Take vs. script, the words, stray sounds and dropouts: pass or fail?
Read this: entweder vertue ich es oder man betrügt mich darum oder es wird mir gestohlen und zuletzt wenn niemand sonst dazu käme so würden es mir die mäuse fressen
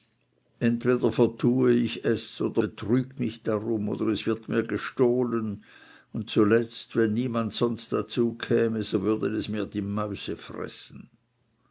fail